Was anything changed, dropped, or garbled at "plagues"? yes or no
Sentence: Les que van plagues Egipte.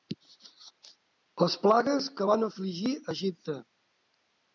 yes